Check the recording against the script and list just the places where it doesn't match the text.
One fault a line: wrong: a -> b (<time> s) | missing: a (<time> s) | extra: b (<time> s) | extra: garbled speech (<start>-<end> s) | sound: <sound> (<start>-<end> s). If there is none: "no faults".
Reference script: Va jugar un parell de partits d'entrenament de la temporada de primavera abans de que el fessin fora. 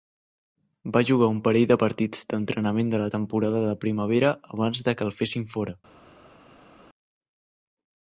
no faults